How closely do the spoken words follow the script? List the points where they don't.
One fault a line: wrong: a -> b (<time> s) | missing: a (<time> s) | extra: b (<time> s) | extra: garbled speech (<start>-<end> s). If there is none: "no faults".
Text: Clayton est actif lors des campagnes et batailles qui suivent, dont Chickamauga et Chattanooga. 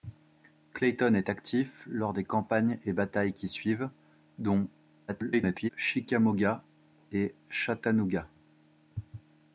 extra: garbled speech (5.1-5.7 s)